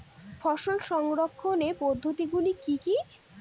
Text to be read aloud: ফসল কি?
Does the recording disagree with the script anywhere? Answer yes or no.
yes